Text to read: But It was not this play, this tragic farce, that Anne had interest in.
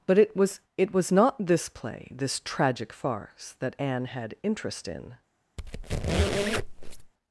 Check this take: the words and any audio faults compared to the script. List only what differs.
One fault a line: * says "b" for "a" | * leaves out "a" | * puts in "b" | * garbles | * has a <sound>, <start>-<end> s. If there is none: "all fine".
* puts in "it was"
* has a squeak, 5.6-7.1 s